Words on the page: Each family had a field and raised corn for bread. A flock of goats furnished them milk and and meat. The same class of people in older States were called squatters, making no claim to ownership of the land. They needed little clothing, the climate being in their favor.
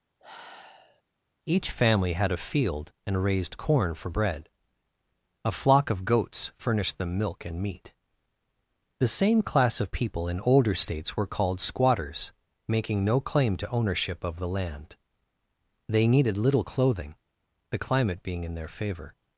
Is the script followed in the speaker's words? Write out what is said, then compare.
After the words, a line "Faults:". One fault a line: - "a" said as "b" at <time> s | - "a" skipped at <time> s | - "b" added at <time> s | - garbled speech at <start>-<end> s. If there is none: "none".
Each family had a field and raised corn for bread. A flock of goats furnished them milk and meat. The same class of people in older States were called squatters, making no claim to ownership of the land. They needed little clothing, the climate being in their favor.
Faults:
- "and" skipped at 7.6 s